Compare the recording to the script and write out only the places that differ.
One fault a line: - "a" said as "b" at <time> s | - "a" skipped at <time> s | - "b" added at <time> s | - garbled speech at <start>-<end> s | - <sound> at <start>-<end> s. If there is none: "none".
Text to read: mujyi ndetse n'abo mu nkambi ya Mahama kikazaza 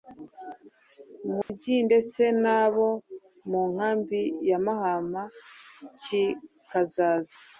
- dropout at 1.4-1.5 s